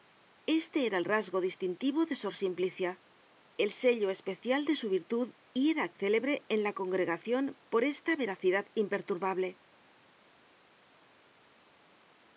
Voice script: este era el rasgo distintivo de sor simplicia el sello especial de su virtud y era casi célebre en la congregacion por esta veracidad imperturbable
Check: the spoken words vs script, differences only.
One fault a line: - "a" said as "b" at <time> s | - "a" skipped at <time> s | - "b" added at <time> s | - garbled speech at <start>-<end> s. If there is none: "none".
- "casi" skipped at 5.9 s